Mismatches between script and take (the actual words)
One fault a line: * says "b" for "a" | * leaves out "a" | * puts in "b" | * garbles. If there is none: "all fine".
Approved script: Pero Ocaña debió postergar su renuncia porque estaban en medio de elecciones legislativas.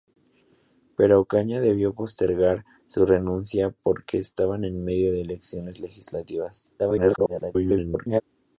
* garbles